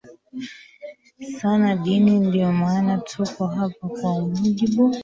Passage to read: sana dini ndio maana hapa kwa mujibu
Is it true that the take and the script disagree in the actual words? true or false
true